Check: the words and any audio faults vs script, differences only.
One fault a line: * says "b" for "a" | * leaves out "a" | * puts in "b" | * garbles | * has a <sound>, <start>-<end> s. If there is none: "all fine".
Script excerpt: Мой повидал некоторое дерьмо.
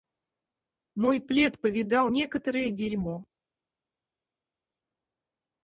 * puts in "плед"